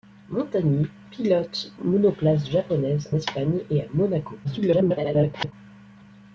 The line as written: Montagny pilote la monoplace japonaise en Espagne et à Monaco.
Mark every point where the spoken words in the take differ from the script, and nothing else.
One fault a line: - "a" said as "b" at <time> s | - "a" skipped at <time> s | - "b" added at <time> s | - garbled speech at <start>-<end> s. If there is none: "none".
- "la" skipped at 1.7 s
- "en" skipped at 3.1 s
- garbled speech at 4.4-5.5 s